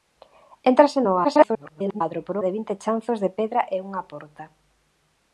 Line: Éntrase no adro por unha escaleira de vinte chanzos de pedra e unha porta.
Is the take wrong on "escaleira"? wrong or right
wrong